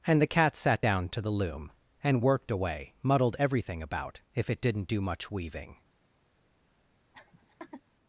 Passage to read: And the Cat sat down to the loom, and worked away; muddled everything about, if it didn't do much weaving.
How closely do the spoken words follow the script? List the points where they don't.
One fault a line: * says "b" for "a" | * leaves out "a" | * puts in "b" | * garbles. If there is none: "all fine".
all fine